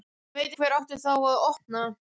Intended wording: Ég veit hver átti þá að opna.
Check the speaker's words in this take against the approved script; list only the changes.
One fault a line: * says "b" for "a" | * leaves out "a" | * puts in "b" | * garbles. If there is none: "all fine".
all fine